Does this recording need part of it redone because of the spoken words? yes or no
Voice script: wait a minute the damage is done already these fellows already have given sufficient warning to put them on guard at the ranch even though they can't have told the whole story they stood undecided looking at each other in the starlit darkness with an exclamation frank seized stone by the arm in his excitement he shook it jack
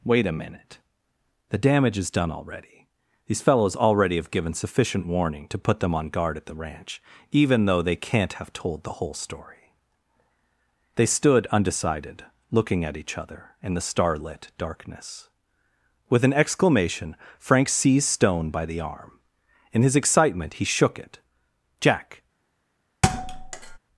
no